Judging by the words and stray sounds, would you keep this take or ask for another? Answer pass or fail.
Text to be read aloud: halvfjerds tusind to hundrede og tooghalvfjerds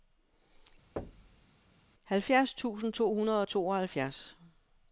fail